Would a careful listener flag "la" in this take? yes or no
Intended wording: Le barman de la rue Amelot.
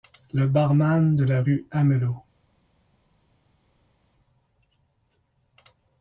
no